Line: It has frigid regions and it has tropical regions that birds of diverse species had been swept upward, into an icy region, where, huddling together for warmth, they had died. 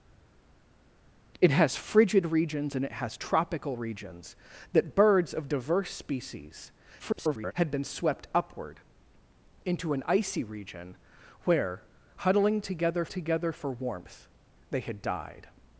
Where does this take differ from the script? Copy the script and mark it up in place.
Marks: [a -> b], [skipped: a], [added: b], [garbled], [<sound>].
It has frigid regions and it has tropical regions that birds of diverse species [garbled] had been swept upward, into an icy region, where, huddling together [added: together] for warmth, they had died.